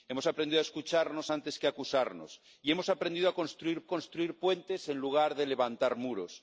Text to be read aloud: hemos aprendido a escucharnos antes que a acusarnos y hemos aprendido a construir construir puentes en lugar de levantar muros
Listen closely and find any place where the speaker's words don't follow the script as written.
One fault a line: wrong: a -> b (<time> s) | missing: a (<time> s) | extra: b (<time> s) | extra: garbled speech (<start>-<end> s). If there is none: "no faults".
no faults